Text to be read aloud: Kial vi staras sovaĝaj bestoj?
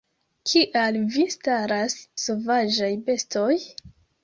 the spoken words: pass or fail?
pass